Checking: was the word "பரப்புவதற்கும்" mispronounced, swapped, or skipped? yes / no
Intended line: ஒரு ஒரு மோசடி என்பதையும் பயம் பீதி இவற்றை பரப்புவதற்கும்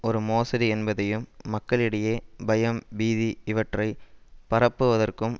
no